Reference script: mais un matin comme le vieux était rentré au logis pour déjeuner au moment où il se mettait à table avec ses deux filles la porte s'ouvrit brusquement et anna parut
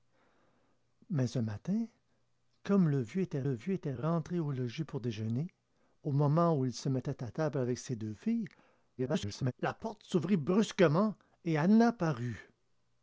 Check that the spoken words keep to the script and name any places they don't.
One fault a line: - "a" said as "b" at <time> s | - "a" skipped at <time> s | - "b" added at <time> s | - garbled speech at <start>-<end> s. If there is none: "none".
- "le vieux était" added at 3.4 s
- garbled speech at 9.0-9.5 s